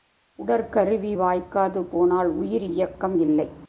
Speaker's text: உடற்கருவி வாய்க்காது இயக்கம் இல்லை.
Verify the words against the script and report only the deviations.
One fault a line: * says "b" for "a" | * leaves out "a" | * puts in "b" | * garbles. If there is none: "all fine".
* puts in "போனால் உயிர்"